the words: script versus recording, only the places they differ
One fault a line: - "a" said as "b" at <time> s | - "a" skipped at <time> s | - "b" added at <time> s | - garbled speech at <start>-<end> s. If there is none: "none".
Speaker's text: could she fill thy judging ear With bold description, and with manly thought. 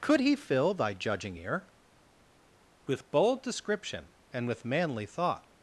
- "she" said as "he" at 0.2 s